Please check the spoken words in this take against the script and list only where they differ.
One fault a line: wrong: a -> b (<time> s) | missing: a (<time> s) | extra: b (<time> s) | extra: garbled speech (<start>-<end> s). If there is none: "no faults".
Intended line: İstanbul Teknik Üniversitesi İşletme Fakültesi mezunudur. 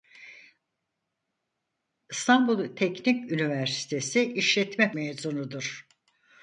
missing: Fakültesi (4.9 s)